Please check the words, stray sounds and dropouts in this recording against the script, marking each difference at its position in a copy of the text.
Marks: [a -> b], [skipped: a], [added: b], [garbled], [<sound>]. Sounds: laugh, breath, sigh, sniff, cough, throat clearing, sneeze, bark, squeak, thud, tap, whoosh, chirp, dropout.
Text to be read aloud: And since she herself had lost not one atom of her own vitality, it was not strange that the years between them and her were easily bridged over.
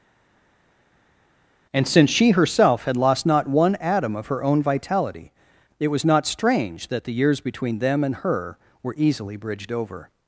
And since she herself had lost not one atom of her own vitality, it was not strange that the years between them and her were easily bridged over.